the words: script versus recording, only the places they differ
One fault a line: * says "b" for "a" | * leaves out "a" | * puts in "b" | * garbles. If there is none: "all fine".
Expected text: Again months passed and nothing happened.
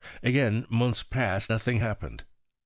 * leaves out "and"